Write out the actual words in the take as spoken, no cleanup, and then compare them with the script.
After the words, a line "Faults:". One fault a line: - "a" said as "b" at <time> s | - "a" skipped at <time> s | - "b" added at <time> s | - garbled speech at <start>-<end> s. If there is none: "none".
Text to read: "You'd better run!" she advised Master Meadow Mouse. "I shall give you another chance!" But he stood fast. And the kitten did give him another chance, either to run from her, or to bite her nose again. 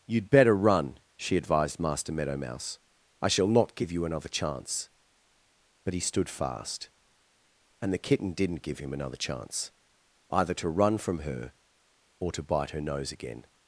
"You'd better run!" she advised Master Meadow Mouse. "I shall not give you another chance!" But he stood fast. And the kitten didn't give him another chance, either to run from her, or to bite her nose again.
Faults:
- "not" added at 3.5 s
- "did" said as "didn't" at 8.3 s